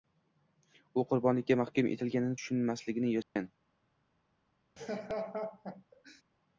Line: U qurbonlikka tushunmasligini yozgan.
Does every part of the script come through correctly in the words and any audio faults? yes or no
no